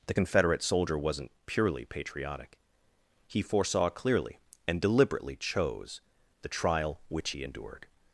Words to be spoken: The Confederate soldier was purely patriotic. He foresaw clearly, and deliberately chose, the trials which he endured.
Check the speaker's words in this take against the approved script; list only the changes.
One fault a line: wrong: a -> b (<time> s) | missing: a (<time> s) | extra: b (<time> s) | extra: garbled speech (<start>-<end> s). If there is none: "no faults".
wrong: was -> wasn't (1.0 s)
wrong: trials -> trial (6.5 s)